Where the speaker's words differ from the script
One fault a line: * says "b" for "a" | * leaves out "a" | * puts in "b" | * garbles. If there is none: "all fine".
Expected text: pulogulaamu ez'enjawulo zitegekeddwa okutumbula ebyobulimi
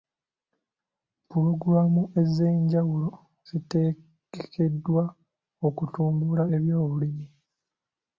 all fine